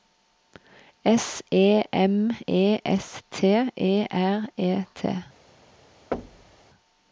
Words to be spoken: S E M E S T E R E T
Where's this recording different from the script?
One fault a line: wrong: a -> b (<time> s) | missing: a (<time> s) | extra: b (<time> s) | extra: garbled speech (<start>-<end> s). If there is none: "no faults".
no faults